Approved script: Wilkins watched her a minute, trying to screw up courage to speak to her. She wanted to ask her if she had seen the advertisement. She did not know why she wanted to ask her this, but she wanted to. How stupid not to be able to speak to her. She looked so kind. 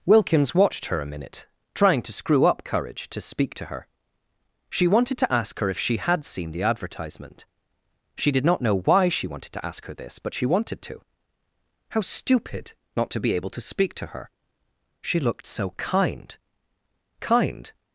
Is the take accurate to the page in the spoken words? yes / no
no